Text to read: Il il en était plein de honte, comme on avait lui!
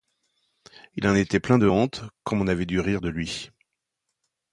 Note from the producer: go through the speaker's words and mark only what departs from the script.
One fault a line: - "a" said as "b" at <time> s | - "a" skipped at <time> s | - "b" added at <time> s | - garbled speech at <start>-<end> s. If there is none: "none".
- "il" skipped at 1.1 s
- "dû rire de" added at 2.7 s